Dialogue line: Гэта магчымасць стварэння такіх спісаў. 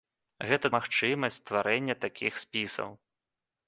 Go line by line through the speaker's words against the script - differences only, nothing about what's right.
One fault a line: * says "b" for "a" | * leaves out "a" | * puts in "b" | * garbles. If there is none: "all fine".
all fine